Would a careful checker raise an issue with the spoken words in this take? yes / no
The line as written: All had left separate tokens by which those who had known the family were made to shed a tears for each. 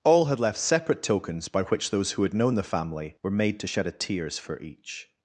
no